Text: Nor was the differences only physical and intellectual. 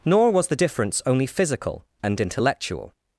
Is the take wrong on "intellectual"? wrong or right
right